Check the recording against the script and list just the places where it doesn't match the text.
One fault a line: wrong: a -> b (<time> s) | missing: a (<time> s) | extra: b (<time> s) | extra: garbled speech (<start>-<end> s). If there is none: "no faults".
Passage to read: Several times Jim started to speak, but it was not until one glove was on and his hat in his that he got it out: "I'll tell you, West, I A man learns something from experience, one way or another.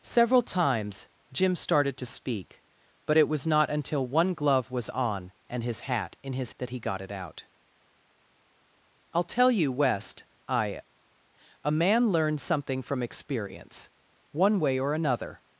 no faults